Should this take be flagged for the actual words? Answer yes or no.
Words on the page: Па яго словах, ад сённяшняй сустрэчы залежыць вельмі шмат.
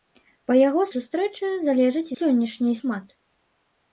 yes